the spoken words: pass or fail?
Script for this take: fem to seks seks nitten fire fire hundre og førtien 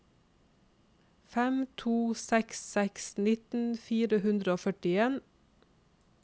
fail